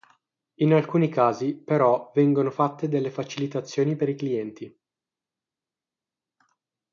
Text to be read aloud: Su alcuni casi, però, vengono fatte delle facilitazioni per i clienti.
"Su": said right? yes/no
no